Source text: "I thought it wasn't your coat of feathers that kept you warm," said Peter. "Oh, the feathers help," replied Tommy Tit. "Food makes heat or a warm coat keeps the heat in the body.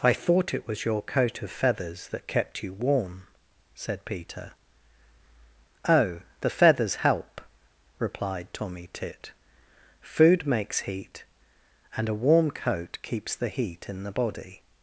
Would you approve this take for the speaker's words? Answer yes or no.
no